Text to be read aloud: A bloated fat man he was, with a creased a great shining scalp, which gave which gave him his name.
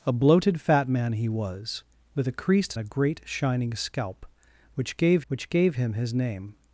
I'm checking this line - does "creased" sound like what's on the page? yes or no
yes